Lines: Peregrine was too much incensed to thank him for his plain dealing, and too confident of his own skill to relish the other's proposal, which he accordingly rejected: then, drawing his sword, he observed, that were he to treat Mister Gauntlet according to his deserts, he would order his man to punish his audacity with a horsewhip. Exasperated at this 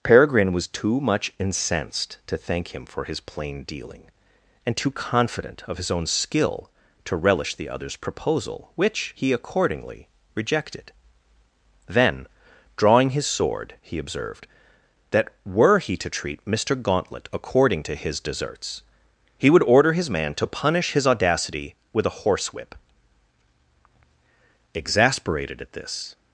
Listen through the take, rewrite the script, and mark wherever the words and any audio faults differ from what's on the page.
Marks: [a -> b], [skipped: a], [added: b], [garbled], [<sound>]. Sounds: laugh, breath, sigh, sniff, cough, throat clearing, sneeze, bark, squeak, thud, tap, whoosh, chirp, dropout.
Peregrine was too much incensed to thank him for his plain dealing, and too confident of his own skill to relish the other's proposal, which he accordingly rejected: then, drawing his sword, he observed, that were he to treat Mister Gauntlet according to his deserts, he would order his man to punish his audacity with a horsewhip. Exasperated at this